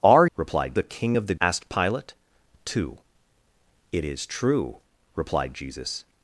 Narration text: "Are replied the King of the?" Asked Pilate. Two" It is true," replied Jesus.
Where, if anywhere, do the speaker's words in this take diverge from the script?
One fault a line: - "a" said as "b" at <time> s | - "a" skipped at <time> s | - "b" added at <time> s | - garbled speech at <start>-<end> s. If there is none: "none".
none